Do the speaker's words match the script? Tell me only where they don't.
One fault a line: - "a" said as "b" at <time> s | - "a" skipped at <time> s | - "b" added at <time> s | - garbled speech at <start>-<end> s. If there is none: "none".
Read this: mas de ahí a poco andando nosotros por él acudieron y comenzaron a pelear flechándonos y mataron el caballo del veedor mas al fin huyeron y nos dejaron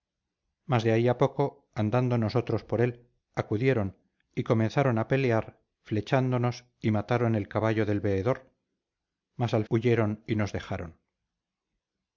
- "fin" skipped at 9.7 s